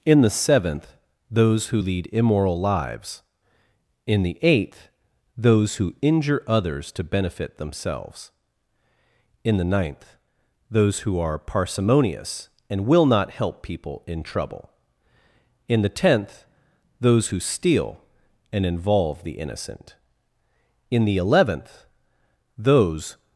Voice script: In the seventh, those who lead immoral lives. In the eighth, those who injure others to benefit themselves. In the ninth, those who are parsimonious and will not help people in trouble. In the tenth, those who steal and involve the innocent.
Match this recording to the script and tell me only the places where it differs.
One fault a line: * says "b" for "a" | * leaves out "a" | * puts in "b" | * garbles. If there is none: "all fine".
* puts in "In the eleventh those"